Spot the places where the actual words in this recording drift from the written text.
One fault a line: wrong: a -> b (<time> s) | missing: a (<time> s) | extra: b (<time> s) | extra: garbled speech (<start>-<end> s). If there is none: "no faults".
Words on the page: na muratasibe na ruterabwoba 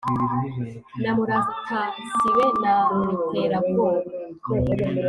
no faults